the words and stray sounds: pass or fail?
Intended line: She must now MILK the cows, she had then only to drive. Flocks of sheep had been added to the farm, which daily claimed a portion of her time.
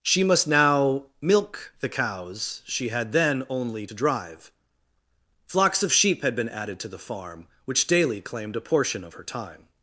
pass